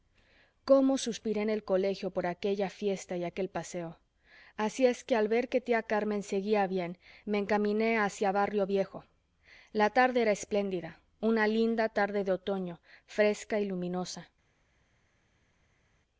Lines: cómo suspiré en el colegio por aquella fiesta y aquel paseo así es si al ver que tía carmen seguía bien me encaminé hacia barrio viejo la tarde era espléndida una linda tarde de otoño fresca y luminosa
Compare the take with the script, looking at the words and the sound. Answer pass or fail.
fail